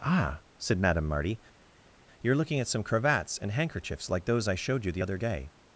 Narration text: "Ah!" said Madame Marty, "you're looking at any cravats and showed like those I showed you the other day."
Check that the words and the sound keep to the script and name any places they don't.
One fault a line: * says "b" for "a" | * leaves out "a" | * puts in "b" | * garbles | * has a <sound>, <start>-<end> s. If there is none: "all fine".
* says "some" for "any"
* says "handkerchiefs" for "showed"